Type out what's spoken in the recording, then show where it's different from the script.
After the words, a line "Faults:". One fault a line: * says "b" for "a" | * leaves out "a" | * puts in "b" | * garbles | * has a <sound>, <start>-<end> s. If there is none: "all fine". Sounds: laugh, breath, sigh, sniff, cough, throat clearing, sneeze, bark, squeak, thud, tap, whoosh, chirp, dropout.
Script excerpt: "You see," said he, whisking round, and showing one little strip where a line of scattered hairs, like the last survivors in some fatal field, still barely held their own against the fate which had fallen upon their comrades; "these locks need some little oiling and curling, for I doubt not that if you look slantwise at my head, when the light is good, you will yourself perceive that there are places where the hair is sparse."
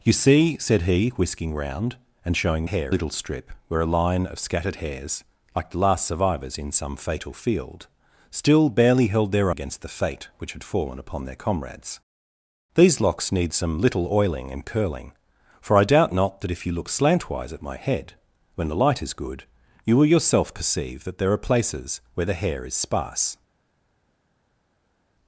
"You see," said he, whisking round, and showing hair little strip where a line of scattered hairs, like the last survivors in some fatal field, still barely held their against the fate which had fallen upon their comrades; "these locks need some little oiling and curling, for I doubt not that if you look slantwise at my head, when the light is good, you will yourself perceive that there are places where the hair is sparse."
Faults:
* says "hair" for "one"
* leaves out "own"